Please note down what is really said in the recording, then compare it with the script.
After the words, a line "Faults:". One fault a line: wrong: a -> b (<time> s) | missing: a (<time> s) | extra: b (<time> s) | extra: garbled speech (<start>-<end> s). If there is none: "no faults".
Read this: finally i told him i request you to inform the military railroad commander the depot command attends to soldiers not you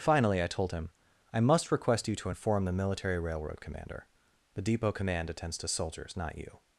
finally i told him i must request you to inform the military railroad commander the depot command attends to soldiers not you
Faults:
extra: must (1.4 s)